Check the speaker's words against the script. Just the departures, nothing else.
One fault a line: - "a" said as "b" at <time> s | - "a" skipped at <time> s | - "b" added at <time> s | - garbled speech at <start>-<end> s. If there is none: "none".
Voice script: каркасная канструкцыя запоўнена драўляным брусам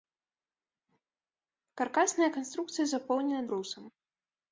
- "драўляным" skipped at 3.4 s